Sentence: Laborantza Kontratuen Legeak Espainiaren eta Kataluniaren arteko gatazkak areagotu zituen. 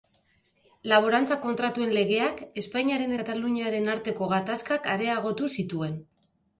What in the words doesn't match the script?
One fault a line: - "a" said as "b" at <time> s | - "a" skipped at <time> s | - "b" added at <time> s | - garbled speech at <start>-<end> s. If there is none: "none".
- "eta" skipped at 3.1 s